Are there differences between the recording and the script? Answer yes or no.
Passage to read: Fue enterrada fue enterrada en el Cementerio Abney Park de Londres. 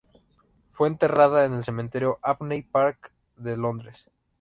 yes